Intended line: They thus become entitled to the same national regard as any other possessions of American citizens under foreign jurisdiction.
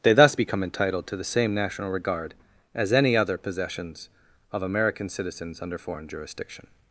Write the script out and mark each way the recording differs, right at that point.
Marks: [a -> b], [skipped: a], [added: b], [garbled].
They thus become entitled to the same national regard as any other possessions of American citizens under foreign jurisdiction.